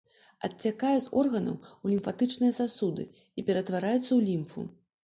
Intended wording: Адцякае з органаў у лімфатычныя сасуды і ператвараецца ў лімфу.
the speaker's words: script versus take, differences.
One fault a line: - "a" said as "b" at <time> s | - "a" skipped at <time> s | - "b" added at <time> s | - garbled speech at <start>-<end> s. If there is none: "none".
none